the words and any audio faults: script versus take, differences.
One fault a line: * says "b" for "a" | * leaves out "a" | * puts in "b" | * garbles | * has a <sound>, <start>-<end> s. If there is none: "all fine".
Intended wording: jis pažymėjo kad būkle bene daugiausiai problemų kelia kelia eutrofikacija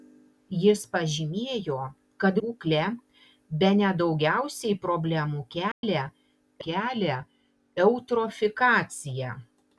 * has a dropout, 5.7-5.8 s